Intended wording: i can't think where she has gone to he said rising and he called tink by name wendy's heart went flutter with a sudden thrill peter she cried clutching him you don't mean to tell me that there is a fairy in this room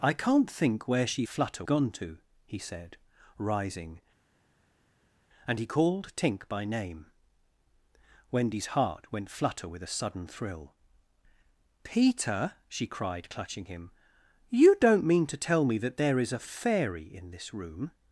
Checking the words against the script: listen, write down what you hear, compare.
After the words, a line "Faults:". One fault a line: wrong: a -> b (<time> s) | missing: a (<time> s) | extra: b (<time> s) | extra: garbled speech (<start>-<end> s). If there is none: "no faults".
i can't think where she flutter gone to he said rising and he called tink by name wendy's heart went flutter with a sudden thrill peter she cried clutching him you don't mean to tell me that there is a fairy in this room
Faults:
wrong: has -> flutter (1.3 s)